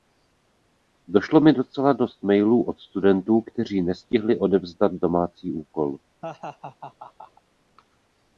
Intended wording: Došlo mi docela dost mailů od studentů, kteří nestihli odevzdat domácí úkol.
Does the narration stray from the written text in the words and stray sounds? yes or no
yes